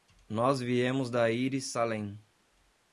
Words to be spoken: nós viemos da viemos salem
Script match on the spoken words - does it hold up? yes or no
no